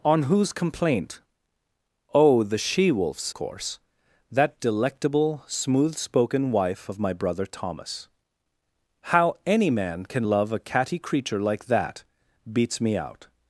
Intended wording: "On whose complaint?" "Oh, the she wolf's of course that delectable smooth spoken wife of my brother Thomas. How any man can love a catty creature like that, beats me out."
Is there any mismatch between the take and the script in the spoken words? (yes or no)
yes